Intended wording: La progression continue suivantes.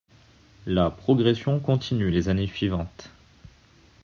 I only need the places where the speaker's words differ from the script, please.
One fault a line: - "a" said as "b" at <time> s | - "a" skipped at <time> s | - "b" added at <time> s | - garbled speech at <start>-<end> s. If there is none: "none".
- "les années" added at 2.1 s